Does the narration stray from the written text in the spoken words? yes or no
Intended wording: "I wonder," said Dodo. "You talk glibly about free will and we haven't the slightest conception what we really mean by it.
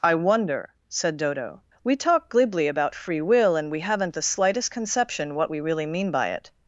yes